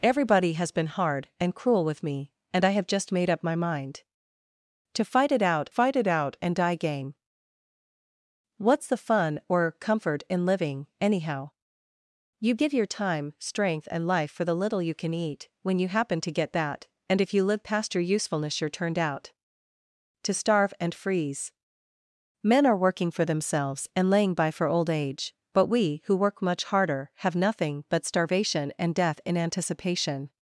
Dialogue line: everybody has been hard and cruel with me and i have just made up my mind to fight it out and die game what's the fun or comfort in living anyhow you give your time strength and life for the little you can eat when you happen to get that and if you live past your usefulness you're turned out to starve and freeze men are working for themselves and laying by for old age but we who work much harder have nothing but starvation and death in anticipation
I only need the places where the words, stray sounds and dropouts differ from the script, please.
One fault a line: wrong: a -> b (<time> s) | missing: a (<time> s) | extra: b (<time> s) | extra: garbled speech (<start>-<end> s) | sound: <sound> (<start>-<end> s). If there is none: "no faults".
extra: fight it out (5.7 s)